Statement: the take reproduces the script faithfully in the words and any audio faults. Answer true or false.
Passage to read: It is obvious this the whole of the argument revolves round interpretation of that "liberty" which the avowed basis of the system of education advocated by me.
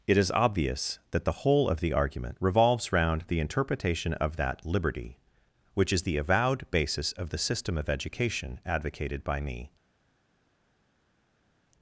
false